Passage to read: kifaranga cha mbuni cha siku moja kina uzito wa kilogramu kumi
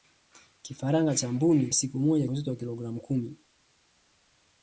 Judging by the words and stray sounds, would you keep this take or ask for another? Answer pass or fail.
fail